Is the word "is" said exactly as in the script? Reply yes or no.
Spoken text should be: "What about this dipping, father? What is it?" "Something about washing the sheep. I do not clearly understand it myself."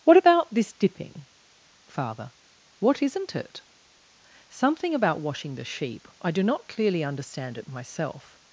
no